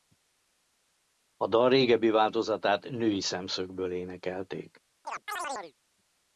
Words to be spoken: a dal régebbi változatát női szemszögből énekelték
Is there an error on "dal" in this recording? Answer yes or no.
no